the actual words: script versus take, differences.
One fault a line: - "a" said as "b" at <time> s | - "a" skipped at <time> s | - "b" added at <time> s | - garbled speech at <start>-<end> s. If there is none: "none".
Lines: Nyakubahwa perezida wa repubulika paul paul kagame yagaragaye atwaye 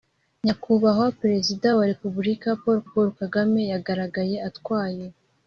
none